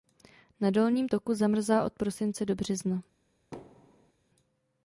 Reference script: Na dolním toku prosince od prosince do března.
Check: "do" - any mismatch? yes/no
no